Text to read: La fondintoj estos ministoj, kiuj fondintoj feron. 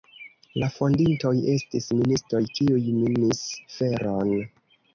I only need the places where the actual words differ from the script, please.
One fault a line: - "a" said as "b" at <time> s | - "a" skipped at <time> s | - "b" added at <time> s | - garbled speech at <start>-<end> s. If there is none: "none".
- "estos" said as "estis" at 1.6 s
- "fondintoj" said as "minis" at 3.0 s